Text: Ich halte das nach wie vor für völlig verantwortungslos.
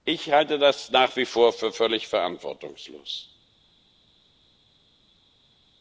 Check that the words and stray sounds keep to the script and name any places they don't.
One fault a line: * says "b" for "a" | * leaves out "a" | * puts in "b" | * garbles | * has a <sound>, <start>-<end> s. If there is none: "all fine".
all fine